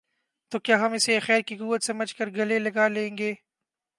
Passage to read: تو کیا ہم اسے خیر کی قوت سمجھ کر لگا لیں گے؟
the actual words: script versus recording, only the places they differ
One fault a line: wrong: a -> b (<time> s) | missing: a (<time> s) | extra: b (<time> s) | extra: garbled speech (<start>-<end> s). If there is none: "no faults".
extra: گلے (2.3 s)